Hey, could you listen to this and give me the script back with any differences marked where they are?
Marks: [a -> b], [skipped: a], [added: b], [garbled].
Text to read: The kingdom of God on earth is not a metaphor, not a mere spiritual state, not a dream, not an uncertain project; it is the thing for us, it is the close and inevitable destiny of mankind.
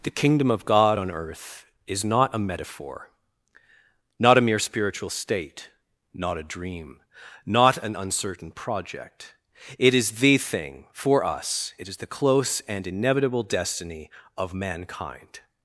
The kingdom of God on earth is not a metaphor, not a mere spiritual state, not a dream, not an uncertain project; it is the thing for us, it is the close and inevitable destiny of mankind.